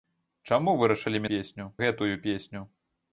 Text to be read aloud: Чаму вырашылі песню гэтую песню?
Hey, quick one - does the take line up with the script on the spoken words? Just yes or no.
yes